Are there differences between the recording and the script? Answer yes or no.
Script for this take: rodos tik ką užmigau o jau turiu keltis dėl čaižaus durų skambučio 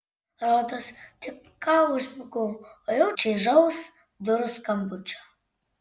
yes